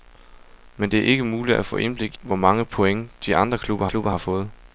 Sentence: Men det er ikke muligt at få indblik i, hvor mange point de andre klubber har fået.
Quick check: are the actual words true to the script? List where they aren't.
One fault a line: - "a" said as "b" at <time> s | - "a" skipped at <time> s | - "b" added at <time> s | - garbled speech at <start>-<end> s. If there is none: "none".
- "i" skipped at 2.2 s
- "klubber" added at 3.8 s